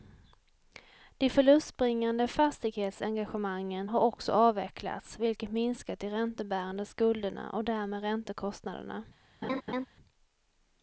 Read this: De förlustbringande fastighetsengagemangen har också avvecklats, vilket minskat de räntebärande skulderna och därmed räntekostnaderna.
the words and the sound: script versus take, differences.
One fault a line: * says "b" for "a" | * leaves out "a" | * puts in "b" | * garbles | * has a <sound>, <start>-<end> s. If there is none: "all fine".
* has a laugh, 9.4-9.9 s